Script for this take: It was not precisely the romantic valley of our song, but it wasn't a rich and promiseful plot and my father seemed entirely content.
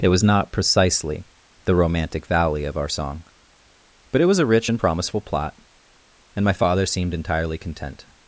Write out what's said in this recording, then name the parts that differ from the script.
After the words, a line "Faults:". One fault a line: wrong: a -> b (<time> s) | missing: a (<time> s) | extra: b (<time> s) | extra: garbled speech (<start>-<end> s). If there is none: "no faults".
It was not precisely the romantic valley of our song, but it was a rich and promiseful plot and my father seemed entirely content.
Faults:
wrong: wasn't -> was (4.2 s)